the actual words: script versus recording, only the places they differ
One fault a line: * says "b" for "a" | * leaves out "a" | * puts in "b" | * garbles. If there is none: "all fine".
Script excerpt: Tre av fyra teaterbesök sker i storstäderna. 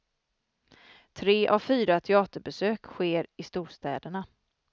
all fine